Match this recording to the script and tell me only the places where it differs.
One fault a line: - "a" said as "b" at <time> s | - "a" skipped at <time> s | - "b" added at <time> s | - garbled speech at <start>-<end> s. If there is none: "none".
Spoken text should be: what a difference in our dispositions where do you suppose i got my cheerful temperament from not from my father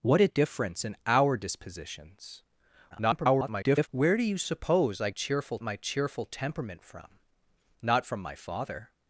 - garbled speech at 2.9-3.9 s
- "got" said as "cheerful" at 5.1 s